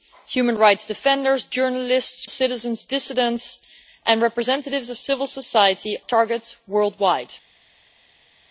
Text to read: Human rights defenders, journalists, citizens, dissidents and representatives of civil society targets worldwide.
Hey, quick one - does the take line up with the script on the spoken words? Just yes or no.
yes